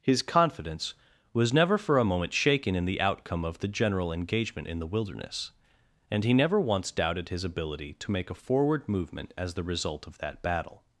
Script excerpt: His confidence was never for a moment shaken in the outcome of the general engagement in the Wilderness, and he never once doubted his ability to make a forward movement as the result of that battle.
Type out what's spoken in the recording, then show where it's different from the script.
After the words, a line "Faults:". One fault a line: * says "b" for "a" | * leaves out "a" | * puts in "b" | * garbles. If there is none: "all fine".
His confidence was never for a moment shaken in the outcome of the general engagement in the Wilderness, and he never once doubted his ability to make a forward movement as the result of that battle.
Faults:
all fine